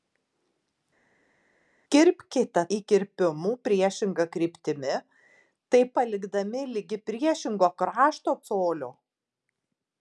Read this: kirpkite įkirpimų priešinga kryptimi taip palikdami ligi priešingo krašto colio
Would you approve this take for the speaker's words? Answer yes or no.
yes